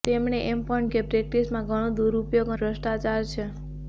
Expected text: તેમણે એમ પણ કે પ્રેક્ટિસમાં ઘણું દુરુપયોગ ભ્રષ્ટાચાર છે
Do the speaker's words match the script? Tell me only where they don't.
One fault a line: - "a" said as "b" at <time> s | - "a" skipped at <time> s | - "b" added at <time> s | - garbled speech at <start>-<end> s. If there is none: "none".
none